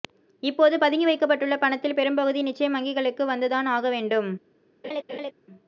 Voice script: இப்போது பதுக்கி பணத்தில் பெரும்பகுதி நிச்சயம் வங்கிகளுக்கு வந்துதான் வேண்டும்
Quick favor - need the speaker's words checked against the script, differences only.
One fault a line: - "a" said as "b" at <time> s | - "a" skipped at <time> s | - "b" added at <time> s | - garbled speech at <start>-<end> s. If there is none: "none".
- "வைக்கப்பட்டுள்ள" added at 1.1 s
- "ஆக" added at 3.7 s